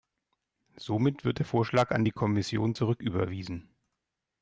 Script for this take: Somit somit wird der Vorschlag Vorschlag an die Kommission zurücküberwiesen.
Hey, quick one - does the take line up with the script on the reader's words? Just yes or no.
no